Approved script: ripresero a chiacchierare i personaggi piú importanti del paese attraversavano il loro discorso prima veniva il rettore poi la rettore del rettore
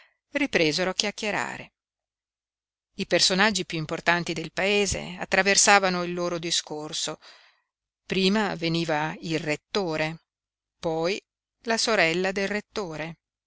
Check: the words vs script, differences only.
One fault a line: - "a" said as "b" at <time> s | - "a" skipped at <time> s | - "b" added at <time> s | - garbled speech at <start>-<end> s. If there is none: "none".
- "rettore" said as "sorella" at 11.8 s